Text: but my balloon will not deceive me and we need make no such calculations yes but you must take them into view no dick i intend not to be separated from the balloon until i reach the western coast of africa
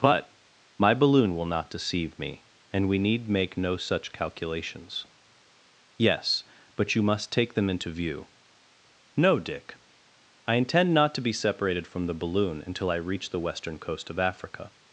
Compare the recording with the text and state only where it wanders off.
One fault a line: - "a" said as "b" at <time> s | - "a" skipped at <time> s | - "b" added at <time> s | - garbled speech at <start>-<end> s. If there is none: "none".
none